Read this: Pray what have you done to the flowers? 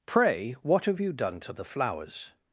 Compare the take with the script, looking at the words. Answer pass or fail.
pass